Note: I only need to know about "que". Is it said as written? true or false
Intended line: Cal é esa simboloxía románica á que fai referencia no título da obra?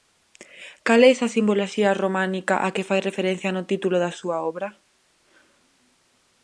true